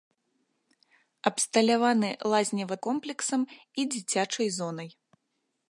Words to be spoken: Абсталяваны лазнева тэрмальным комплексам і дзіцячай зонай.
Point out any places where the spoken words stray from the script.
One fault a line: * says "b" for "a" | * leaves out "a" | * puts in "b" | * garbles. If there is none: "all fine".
* leaves out "тэрмальным"